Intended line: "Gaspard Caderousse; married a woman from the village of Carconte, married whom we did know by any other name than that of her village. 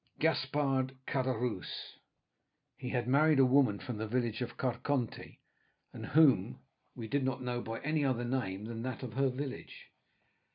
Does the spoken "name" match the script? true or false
true